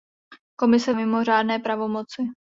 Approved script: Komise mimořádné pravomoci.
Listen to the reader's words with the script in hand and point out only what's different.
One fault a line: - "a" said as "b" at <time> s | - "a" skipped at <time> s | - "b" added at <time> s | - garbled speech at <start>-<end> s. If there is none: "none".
none